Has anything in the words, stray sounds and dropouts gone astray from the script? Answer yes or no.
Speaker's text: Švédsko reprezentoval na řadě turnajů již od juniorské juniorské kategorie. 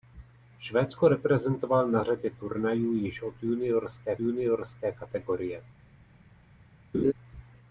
yes